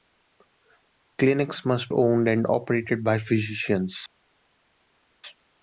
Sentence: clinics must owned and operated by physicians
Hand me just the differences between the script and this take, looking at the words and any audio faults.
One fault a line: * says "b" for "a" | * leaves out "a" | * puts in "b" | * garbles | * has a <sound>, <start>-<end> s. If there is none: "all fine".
all fine